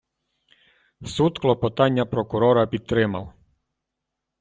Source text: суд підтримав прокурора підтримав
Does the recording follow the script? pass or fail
fail